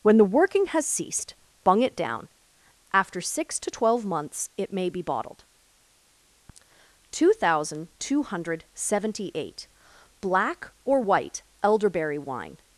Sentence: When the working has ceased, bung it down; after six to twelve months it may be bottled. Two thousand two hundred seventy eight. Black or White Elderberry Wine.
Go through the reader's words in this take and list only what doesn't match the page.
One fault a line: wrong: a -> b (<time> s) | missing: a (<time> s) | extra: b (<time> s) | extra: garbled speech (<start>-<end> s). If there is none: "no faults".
no faults